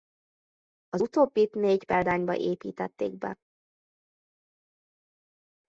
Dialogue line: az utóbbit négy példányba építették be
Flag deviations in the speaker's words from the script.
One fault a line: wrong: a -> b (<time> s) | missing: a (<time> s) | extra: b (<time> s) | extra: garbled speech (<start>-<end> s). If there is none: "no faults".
no faults